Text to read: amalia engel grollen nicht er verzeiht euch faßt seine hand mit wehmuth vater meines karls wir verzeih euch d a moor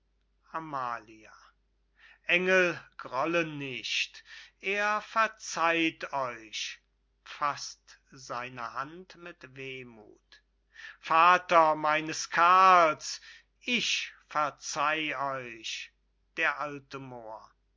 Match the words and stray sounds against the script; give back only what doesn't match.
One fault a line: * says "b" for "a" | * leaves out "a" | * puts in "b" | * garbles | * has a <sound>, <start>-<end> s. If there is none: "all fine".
* says "ich" for "wir"